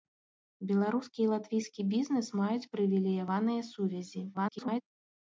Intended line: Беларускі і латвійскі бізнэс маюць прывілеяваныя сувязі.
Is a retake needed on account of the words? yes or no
yes